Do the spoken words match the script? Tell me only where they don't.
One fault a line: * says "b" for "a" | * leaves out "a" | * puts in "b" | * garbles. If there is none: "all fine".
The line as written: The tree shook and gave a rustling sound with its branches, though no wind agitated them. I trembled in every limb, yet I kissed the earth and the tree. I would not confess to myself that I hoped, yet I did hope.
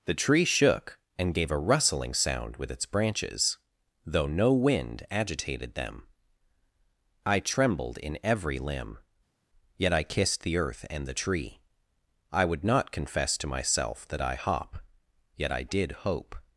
* says "hop" for "hoped"